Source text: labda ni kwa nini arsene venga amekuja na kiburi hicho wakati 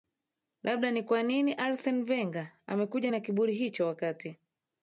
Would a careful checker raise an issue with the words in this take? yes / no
no